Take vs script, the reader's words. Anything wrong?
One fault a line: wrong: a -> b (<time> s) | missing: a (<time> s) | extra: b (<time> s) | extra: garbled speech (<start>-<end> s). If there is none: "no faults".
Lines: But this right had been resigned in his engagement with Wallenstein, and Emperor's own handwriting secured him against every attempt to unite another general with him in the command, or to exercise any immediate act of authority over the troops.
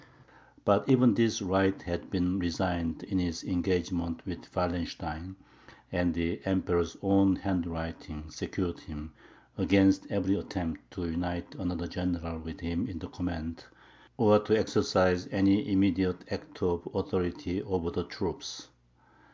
extra: even (0.9 s)
extra: the (6.2 s)